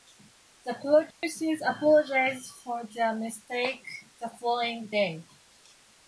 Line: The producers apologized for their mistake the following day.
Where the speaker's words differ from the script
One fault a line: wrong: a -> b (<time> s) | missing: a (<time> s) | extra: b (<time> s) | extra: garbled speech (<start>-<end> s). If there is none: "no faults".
no faults